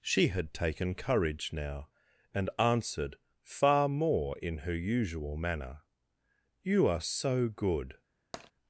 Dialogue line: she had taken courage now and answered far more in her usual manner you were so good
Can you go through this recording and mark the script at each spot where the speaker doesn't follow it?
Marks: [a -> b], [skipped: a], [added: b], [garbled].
she had taken courage now and answered far more in her usual manner you [were -> are] so good